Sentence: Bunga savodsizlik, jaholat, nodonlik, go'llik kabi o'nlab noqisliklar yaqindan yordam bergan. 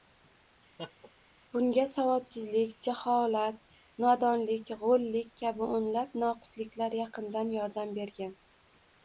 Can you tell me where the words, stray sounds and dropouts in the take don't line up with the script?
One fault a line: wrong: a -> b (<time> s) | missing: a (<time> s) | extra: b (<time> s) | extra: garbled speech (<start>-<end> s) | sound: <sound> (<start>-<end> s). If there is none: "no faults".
sound: laugh (0.8-1.1 s)